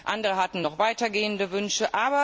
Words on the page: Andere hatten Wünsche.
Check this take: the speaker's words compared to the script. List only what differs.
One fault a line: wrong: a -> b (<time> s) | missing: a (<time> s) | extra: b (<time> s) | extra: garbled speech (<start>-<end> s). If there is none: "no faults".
extra: noch weitergehende (0.6 s)